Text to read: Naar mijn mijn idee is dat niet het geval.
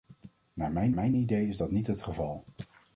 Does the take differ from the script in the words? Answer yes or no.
no